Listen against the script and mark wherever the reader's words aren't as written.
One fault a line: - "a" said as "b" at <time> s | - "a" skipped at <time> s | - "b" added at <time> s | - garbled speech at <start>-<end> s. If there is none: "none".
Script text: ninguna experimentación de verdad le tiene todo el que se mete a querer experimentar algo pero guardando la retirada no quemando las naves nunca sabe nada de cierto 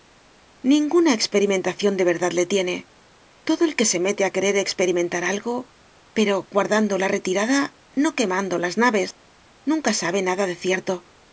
none